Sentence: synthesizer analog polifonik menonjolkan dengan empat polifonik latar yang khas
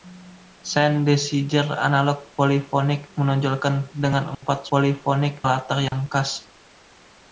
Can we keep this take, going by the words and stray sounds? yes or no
no